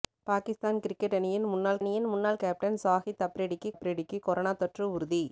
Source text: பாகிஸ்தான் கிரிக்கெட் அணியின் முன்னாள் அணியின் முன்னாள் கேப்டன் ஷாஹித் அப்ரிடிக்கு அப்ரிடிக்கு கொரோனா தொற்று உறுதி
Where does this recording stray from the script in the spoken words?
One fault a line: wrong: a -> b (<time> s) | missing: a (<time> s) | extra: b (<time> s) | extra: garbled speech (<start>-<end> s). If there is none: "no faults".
no faults